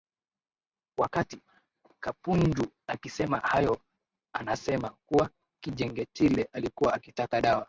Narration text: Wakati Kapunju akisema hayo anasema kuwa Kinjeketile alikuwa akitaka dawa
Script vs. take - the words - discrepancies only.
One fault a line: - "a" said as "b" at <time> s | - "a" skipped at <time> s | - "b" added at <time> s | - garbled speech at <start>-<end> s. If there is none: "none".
none